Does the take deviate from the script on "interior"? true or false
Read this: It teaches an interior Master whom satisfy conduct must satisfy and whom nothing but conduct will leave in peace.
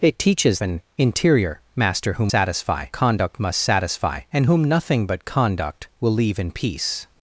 false